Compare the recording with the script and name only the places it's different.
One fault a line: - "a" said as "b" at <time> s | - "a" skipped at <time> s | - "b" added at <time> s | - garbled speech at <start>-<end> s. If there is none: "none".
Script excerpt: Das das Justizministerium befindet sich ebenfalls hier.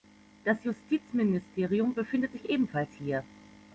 - "das" skipped at 0.6 s